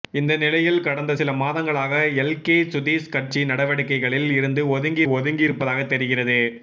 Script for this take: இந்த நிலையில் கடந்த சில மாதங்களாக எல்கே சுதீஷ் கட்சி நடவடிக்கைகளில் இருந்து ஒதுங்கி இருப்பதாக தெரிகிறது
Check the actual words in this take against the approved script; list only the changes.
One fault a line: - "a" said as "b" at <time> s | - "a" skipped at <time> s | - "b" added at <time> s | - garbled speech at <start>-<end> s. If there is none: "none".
- "ஒதுங்கி" added at 5.1 s